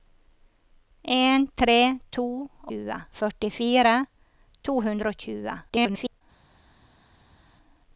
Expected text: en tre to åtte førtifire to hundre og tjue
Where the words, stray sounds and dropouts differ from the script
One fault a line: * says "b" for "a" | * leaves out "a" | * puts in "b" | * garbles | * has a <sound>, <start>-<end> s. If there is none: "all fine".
* says "tjue" for "åtte"
* garbles